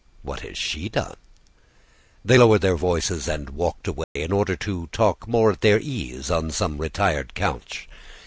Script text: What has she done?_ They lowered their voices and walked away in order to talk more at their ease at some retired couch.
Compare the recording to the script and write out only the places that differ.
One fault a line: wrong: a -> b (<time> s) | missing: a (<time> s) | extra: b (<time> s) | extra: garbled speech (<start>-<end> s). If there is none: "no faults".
wrong: at -> on (6.3 s)